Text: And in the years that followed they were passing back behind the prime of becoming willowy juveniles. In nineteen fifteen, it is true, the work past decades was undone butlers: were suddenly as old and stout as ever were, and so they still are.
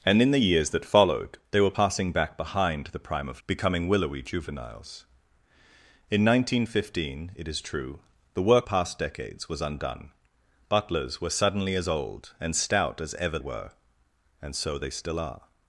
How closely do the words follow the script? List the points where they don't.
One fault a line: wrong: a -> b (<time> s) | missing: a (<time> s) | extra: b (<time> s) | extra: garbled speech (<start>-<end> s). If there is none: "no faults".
no faults